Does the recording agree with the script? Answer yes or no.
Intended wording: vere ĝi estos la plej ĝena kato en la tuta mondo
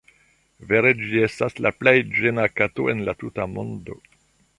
no